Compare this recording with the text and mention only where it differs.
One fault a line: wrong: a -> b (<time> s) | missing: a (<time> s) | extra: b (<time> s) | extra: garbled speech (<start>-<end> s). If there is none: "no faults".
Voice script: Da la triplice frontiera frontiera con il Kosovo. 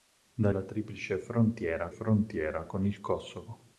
no faults